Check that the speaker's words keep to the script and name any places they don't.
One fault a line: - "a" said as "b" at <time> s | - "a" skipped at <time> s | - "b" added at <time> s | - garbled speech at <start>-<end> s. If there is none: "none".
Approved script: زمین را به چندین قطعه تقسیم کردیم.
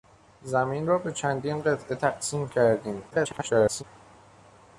- garbled speech at 3.1-3.8 s